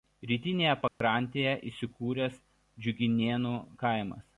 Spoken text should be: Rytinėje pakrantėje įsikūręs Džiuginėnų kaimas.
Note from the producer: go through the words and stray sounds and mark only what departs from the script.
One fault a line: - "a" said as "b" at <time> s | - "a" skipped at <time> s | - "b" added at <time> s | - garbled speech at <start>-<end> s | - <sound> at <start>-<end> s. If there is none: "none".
- dropout at 0.9-1.0 s